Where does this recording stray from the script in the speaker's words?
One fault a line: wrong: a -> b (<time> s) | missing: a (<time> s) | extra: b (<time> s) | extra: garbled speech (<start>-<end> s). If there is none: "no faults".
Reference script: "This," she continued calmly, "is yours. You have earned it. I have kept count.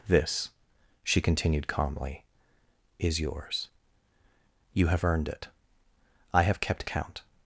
no faults